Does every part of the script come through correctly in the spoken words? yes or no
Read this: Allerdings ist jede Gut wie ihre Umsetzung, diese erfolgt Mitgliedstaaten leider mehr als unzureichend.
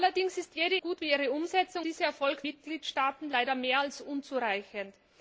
yes